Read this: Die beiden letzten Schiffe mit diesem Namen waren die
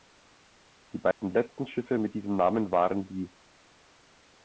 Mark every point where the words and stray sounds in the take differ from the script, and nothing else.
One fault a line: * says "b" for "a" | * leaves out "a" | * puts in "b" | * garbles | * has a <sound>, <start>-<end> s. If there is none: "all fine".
* has a dropout, 1.1-1.2 s